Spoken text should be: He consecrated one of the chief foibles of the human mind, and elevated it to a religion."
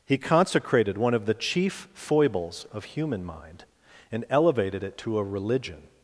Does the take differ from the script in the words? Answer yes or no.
yes